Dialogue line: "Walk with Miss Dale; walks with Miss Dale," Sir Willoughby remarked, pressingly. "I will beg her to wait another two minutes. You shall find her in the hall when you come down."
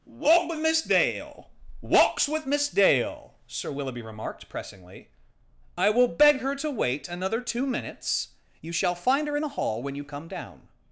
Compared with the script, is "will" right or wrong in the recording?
right